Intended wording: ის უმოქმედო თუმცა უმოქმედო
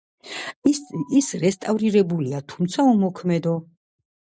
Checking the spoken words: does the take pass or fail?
fail